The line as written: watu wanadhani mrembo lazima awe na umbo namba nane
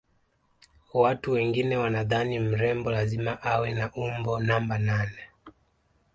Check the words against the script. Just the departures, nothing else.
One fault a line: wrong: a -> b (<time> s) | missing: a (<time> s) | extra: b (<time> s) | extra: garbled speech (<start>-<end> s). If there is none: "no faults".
extra: wengine (1.3 s)